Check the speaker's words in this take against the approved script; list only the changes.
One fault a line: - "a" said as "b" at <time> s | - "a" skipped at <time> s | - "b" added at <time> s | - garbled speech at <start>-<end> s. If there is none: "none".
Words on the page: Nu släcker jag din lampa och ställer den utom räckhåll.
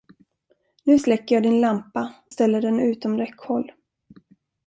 - "och" skipped at 2.1 s